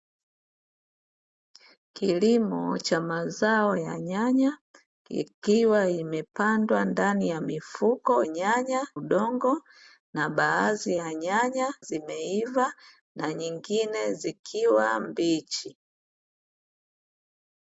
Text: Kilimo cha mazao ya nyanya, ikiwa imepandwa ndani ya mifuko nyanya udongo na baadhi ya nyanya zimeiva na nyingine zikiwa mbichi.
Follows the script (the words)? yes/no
yes